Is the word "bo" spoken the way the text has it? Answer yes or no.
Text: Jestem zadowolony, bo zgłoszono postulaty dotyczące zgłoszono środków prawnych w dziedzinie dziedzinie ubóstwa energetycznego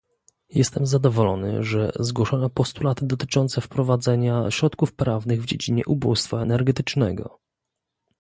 no